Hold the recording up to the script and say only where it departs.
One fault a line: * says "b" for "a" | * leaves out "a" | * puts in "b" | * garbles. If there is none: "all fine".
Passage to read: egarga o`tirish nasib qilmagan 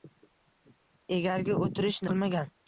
* leaves out "nasib"